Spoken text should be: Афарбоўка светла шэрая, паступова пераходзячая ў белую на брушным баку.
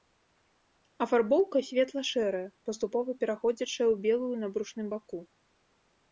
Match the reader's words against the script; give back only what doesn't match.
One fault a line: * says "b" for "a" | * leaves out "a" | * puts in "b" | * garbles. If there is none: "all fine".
all fine